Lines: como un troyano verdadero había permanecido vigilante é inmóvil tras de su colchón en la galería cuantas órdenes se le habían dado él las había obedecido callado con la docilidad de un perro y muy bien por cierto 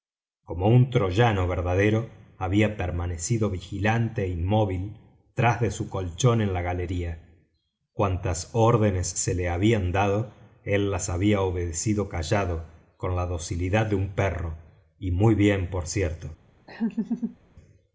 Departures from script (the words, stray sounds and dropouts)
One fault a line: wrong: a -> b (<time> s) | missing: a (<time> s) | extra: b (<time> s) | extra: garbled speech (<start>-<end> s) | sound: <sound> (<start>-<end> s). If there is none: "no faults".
sound: laugh (16.7-17.4 s)